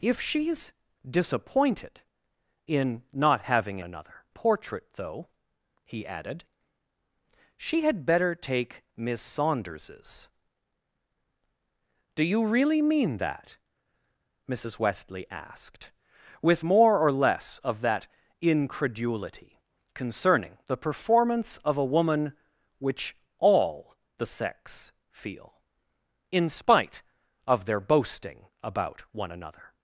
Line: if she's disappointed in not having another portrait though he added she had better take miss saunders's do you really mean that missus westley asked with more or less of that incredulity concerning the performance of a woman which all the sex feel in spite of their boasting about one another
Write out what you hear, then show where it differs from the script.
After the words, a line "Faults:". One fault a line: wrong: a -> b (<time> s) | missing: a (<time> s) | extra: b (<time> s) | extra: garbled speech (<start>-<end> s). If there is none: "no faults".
if she's disappointed in not having another portrait though he added she had better take miss saunders's do you really mean that missus westley asked with more or less of that incredulity concerning the performance of a woman which all the sex feel in spite of their boasting about one another
Faults:
no faults